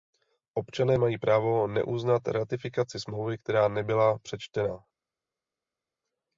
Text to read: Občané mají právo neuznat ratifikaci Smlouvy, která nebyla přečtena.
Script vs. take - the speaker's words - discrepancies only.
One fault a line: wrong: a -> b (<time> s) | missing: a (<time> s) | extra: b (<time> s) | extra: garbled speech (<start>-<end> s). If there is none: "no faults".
no faults